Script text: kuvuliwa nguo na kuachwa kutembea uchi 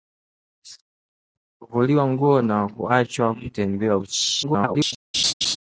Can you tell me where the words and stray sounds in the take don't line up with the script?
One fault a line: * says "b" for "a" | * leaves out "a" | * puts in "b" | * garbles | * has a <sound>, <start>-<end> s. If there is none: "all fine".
* garbles
* has a laugh, 5.1-5.6 s